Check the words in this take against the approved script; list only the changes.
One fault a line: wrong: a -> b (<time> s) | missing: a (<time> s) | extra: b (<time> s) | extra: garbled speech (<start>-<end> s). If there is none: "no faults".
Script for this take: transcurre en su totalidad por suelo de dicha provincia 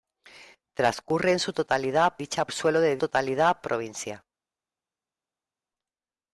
wrong: por -> dicha (2.2 s)
wrong: dicha -> totalidad (3.0 s)